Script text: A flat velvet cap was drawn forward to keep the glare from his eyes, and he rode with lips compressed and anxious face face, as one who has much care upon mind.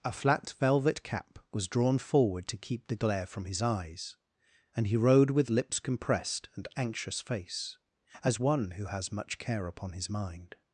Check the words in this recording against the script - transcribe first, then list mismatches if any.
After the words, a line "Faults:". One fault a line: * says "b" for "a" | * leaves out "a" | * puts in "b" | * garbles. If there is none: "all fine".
A flat velvet cap was drawn forward to keep the glare from his eyes, and he rode with lips compressed and anxious face, as one who has much care upon his mind.
Faults:
* leaves out "face"
* puts in "his"